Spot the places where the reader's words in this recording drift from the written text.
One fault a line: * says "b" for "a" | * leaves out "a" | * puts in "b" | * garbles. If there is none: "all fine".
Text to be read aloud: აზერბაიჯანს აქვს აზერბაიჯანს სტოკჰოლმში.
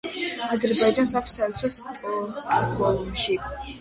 * says "საელჩო" for "აზერბაიჯანს"